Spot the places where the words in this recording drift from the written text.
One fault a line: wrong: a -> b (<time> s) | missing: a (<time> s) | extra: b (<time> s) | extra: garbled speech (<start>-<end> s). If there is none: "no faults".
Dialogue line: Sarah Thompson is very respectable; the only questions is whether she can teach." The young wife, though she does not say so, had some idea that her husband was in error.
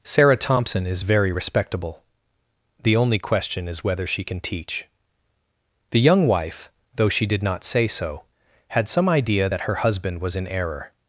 wrong: questions -> question (3.2 s)
wrong: does -> did (7.3 s)